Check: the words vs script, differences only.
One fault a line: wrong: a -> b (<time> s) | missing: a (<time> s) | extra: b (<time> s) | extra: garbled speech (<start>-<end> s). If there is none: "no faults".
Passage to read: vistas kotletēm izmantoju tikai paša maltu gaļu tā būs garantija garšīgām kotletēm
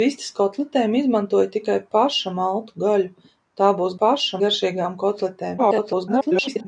wrong: garantija -> paša (4.0 s)
extra: garbled speech (5.6-6.7 s)